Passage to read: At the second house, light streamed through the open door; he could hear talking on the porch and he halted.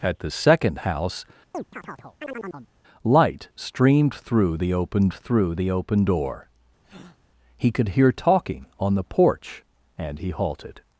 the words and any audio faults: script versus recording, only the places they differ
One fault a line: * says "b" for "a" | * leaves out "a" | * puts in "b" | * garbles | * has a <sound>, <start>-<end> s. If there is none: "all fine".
* has a chirp, 1.5-2.7 s
* puts in "through the open"
* has a breath, 6.8-7.2 s